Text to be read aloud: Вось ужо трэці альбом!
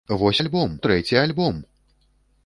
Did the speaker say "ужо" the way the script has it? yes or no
no